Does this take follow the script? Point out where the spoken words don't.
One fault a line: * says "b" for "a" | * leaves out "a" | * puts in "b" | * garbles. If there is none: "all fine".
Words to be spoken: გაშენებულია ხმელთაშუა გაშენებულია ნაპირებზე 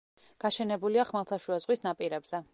* says "ზღვის" for "გაშენებულია"